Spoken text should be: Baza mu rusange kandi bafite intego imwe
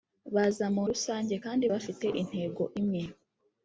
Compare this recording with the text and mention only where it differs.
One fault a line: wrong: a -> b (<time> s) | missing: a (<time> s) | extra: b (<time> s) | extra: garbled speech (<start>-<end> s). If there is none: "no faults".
no faults